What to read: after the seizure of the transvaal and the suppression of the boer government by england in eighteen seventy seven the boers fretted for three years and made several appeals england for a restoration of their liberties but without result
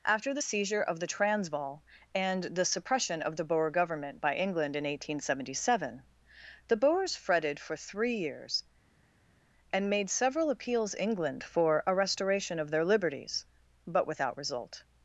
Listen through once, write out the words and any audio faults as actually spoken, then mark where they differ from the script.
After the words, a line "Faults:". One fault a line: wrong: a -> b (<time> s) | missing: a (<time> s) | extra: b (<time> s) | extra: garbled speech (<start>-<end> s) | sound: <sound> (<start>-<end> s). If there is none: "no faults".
after the seizure of the transvaal and the suppression of the boer government by england in eighteen seventy seven the boers fretted for three years and made several appeals england for a restoration of their liberties but without result
Faults:
no faults